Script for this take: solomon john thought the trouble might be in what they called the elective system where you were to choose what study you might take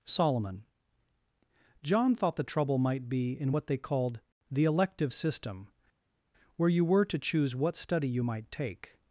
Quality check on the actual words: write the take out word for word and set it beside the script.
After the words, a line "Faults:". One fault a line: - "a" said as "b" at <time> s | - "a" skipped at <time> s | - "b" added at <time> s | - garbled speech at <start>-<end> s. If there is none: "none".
solomon john thought the trouble might be in what they called the elective system where you were to choose what study you might take
Faults:
none